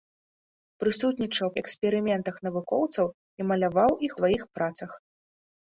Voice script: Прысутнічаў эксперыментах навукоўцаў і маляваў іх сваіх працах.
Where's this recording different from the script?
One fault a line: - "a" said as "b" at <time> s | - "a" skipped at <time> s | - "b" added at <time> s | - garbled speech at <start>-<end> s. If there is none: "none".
none